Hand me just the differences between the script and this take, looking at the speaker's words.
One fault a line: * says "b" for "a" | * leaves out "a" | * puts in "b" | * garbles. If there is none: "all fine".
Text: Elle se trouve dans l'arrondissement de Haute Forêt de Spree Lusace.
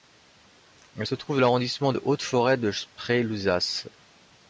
all fine